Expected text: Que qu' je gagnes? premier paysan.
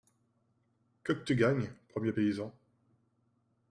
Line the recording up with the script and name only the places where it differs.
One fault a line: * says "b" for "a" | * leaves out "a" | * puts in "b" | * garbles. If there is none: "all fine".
* says "tu" for "je"